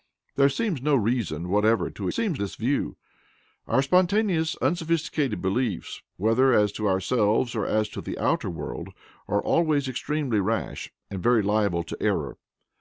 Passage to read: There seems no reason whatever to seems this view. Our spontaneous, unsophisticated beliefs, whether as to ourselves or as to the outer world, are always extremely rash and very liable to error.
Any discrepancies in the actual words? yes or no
no